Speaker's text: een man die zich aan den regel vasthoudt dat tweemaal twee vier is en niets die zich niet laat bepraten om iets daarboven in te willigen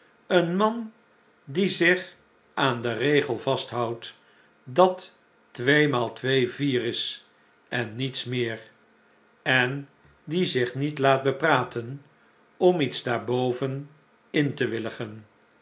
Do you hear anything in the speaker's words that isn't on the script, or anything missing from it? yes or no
yes